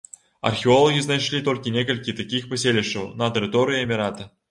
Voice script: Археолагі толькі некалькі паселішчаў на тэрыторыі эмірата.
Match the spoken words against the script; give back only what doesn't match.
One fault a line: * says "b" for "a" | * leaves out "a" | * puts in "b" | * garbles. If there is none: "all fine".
* puts in "знайшлі"
* puts in "такіх"